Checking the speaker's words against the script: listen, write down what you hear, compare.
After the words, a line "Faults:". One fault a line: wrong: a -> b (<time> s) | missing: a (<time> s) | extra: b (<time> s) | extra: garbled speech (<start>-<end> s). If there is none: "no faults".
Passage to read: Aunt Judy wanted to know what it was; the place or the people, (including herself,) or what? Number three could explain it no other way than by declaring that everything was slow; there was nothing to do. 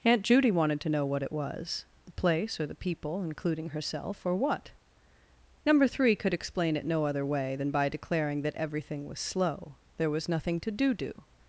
Aunt Judy wanted to know what it was; the place or the people, (including herself,) or what? Number three could explain it no other way than by declaring that everything was slow; there was nothing to do do.
Faults:
extra: do (10.9 s)